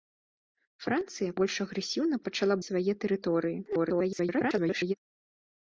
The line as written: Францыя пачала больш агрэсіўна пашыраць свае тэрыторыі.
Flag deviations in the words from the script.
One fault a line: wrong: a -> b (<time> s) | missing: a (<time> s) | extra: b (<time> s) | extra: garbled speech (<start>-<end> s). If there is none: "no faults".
missing: пачала (1.4 s)
wrong: пашыраць -> пачала (2.3 s)
extra: garbled speech (3.6-4.9 s)